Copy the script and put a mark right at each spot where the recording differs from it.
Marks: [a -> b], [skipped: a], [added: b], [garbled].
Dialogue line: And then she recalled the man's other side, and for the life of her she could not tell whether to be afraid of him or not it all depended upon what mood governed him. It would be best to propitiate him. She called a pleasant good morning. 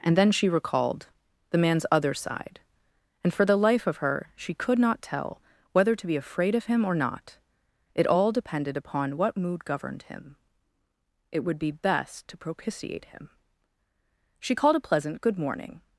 And then she recalled the man's other side, and for the life of her she could not tell whether to be afraid of him or not it all depended upon what mood governed him. It would be best to propitiate him. She called a pleasant good morning.